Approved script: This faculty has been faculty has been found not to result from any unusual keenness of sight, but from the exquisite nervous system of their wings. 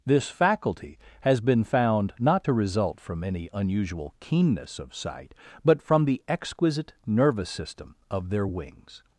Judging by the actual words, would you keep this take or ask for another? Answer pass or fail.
fail